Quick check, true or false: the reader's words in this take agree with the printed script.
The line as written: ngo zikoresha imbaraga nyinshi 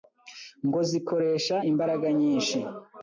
true